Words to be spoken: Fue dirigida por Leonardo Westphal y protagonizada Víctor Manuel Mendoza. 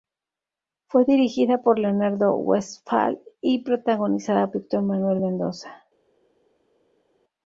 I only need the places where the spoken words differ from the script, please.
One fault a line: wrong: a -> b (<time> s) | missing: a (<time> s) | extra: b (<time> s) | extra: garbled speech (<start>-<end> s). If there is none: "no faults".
no faults